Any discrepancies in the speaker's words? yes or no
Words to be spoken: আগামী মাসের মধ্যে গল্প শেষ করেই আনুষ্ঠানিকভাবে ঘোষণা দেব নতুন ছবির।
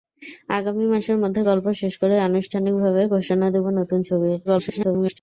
yes